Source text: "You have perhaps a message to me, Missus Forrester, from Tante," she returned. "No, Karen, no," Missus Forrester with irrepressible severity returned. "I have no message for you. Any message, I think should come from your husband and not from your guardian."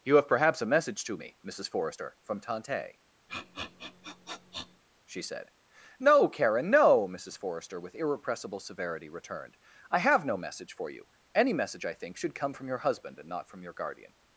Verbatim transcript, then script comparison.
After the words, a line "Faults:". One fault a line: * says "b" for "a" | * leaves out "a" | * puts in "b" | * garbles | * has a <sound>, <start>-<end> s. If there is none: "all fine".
"You have perhaps a message to me, Missus Forrester, from Tante," she said. "No, Karen, no," Missus Forrester with irrepressible severity returned. "I have no message for you. Any message, I think should come from your husband and not from your guardian."
Faults:
* has a sniff, 3.3-4.8 s
* says "said" for "returned"